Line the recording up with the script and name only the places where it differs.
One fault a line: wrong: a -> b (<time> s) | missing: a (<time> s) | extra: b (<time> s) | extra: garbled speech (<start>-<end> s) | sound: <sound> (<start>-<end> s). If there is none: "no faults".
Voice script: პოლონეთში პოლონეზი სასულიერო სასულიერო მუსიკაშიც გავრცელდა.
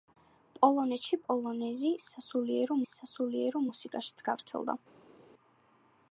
no faults